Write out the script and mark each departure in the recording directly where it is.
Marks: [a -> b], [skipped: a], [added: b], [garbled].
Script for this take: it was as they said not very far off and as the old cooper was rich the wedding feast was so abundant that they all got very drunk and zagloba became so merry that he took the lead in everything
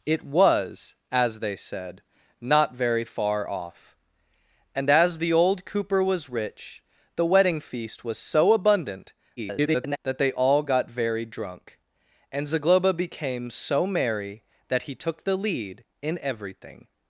it was as they said not very far off and as the old cooper was rich the wedding feast was so abundant [garbled] that they all got very drunk and zagloba became so merry that he took the lead in everything